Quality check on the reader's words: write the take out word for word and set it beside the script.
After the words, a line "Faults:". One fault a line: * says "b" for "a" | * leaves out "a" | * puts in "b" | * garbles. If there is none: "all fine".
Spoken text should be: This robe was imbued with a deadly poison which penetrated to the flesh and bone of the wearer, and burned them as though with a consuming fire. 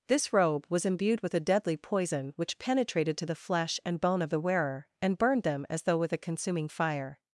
This robe was imbued with a deadly poison which penetrated to the flesh and bone of the wearer, and burned them as though with a consuming fire.
Faults:
all fine